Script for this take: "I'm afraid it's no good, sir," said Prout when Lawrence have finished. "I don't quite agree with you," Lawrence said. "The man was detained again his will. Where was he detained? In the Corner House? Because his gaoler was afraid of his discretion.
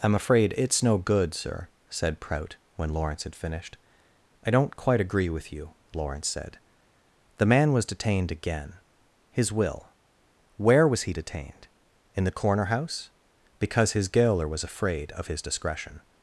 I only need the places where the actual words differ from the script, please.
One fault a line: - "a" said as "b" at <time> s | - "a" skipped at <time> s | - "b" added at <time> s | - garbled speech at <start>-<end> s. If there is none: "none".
- "have" said as "had" at 3.2 s